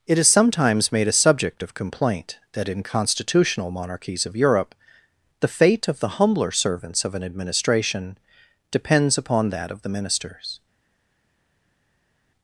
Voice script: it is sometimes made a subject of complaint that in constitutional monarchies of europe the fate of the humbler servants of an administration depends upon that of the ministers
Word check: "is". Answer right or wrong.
right